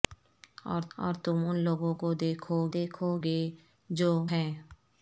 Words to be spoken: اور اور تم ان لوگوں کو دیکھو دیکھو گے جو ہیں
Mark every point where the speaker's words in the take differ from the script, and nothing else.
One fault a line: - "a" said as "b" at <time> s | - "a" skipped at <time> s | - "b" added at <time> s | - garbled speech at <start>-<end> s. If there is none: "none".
none